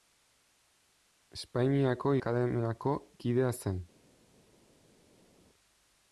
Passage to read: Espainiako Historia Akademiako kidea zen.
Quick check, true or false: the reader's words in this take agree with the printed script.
false